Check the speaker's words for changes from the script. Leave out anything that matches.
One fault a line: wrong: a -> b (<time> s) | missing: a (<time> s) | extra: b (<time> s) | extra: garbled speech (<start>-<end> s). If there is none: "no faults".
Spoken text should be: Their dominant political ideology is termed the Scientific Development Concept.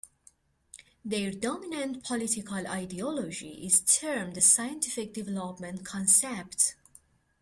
no faults